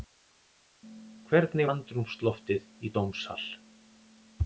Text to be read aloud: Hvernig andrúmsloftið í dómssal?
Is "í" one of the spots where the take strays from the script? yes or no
no